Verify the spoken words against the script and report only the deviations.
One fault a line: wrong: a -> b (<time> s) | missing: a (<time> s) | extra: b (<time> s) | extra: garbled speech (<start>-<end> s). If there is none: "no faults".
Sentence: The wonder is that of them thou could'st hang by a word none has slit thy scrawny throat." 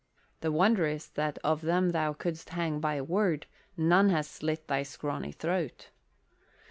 no faults